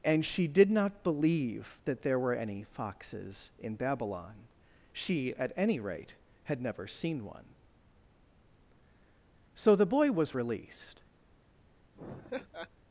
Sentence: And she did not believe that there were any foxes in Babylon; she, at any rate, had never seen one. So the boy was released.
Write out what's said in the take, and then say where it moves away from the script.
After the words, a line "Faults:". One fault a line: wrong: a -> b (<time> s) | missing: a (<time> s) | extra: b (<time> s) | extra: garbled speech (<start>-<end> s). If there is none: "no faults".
And she did not believe that there were any foxes in Babylon; she, at any rate, had never seen one. So the boy was released.
Faults:
no faults